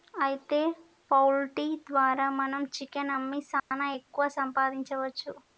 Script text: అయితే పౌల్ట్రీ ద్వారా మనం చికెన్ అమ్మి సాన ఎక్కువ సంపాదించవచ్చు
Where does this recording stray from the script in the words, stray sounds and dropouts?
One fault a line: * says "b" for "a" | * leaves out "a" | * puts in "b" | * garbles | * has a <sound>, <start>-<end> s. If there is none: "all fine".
* has a dropout, 3.6-3.7 s